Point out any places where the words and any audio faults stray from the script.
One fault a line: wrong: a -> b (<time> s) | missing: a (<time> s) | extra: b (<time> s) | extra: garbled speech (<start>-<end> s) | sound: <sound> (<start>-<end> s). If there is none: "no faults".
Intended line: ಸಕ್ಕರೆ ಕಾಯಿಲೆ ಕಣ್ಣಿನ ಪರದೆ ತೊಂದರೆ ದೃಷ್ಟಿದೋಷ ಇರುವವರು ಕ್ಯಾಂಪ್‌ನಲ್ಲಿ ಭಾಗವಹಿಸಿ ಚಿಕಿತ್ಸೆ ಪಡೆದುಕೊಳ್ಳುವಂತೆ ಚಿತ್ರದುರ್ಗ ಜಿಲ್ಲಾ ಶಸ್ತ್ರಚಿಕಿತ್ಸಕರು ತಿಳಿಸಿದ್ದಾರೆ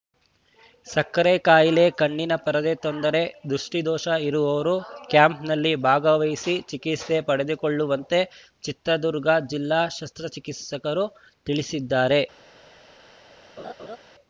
sound: laugh (13.6-14.0 s)